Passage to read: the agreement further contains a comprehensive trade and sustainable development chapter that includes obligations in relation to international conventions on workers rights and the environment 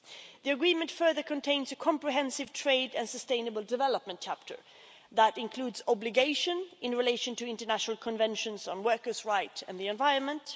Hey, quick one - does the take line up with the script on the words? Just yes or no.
yes